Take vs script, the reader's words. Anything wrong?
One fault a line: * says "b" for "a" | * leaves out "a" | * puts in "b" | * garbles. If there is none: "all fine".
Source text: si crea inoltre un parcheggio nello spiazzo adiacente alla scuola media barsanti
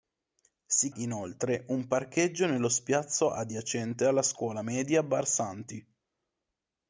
* leaves out "crea"